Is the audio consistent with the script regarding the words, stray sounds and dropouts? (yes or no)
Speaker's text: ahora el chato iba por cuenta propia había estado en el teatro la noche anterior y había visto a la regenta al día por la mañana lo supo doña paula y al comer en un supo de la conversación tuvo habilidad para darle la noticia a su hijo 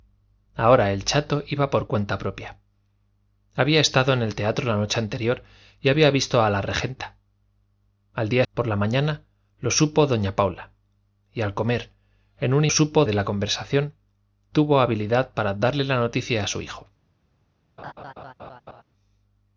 no